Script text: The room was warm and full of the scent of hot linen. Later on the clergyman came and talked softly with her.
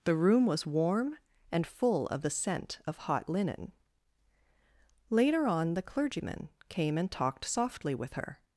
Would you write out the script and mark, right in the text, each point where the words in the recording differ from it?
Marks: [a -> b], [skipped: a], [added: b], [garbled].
The room was warm and full of the scent of hot linen. Later on the clergyman came and talked softly with her.